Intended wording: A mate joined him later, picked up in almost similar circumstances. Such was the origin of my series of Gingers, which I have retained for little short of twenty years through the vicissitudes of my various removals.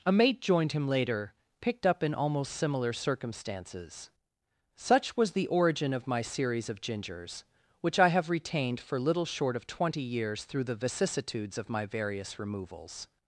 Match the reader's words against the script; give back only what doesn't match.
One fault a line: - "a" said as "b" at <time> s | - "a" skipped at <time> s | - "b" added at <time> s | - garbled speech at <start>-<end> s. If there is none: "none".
none